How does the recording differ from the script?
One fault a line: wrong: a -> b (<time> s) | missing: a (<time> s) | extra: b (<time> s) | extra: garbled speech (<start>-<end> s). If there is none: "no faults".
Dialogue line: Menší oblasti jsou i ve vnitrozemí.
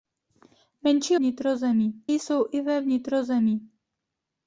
wrong: oblasti -> vnitrozemí (1.1 s)